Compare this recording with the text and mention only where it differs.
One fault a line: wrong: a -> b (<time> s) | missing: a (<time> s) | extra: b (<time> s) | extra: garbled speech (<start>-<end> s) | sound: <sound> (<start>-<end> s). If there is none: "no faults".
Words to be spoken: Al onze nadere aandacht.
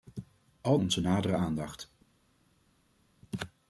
no faults